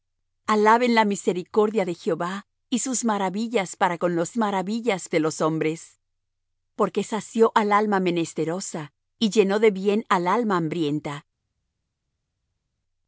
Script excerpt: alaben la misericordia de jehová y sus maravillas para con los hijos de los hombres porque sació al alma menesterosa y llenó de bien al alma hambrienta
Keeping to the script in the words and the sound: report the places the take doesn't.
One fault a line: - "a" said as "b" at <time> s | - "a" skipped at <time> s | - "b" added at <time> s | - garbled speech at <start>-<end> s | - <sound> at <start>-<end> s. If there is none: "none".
- "hijos" said as "maravillas" at 4.4 s